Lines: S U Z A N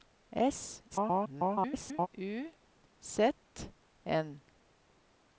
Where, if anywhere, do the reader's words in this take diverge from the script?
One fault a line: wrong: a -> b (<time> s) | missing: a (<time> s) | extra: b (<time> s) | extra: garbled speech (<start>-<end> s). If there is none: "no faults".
extra: garbled speech (0.9-2.1 s)
missing: A (3.3 s)